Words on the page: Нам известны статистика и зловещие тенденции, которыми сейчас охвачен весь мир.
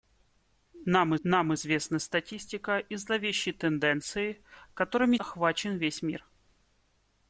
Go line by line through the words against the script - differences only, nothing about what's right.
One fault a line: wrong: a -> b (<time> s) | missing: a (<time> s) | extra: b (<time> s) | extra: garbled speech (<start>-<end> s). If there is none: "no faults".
extra: нам (1.2 s)
missing: сейчас (5.2 s)